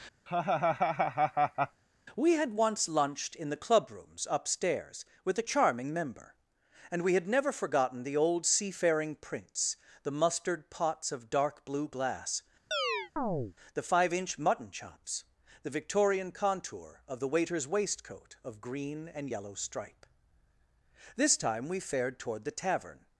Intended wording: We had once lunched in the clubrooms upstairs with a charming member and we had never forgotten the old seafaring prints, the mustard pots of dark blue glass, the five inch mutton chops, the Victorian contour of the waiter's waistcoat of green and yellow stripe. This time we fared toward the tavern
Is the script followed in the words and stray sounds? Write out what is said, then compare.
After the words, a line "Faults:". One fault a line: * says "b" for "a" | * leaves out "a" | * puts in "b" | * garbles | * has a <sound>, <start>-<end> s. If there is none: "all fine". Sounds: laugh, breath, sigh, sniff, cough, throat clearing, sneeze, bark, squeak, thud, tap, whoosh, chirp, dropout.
We had once lunched in the clubrooms upstairs with a charming member and we had never forgotten the old seafaring prints, the mustard pots of dark blue glass, the five inch mutton chops, the Victorian contour of the waiter's waistcoat of green and yellow stripe. This time we fared toward the tavern
Faults:
* has a laugh, 0.3-1.8 s
* has a chirp, 12.7-13.5 s